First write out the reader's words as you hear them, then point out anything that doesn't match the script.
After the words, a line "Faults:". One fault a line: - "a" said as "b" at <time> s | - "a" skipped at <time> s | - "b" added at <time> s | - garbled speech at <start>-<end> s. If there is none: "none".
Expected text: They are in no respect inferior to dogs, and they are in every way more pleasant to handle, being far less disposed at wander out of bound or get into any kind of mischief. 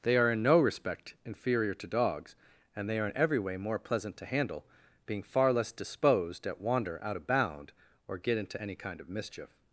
They are in no respect inferior to dogs, and they are in every way more pleasant to handle, being far less disposed at wander out of bound or get into any kind of mischief.
Faults:
none